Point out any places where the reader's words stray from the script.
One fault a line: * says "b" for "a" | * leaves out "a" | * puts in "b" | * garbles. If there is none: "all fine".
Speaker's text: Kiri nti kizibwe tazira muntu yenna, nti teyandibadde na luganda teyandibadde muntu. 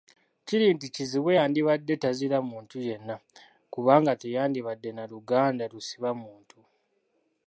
* puts in "yandibadde"
* says "kubanga" for "nti"
* says "lusiba" for "teyandibadde"